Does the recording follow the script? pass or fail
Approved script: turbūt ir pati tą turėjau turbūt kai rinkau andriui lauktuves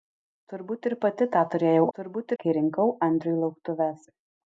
pass